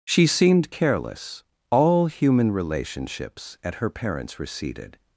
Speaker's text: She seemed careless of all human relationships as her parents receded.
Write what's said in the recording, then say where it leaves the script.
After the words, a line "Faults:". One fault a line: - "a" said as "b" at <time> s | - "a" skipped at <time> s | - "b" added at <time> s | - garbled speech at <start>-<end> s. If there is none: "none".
She seemed careless all human relationships at her parents receded.
Faults:
- "of" skipped at 1.4 s
- "as" said as "at" at 3.6 s